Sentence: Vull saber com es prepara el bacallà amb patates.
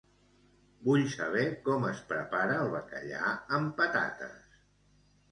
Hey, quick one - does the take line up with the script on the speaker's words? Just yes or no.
yes